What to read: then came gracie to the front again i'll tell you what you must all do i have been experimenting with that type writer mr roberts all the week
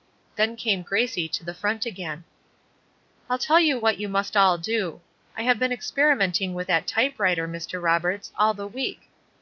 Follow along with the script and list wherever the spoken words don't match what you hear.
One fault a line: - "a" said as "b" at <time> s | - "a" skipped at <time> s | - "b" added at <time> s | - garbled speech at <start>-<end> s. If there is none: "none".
none